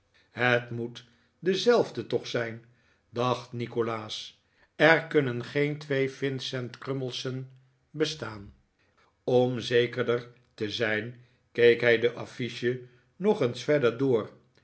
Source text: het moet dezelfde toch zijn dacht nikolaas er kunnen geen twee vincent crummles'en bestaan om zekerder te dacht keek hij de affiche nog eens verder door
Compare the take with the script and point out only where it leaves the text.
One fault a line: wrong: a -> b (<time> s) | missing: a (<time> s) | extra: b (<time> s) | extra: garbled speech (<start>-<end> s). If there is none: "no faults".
wrong: dacht -> zijn (10.7 s)